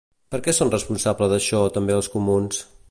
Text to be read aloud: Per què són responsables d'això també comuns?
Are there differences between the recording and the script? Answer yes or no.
yes